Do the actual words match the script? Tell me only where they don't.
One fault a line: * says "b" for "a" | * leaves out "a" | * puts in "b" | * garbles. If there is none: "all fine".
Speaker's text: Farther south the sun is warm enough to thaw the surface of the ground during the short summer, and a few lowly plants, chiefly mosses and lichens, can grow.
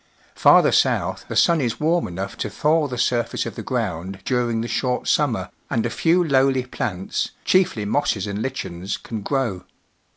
all fine